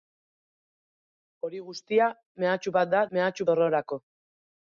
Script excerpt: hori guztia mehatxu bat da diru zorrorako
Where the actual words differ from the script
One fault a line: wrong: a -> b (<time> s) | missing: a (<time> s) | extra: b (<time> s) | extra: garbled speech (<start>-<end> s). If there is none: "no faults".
wrong: diru -> mehatxu (3.2 s)